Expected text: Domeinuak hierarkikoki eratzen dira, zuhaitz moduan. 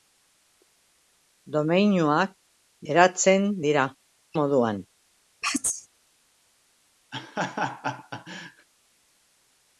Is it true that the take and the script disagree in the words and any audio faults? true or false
true